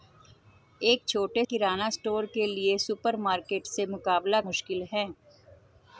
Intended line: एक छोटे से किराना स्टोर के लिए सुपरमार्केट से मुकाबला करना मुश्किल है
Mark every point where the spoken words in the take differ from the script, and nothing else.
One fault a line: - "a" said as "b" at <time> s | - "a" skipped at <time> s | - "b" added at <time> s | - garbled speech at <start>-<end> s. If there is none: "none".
- "से" skipped at 1.4 s
- "करना" skipped at 4.4 s